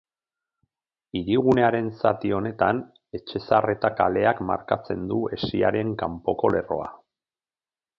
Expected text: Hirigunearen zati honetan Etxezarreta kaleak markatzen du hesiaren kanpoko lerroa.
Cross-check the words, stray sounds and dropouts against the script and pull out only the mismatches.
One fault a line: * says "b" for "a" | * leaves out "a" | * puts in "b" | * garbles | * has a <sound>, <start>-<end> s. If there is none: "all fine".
all fine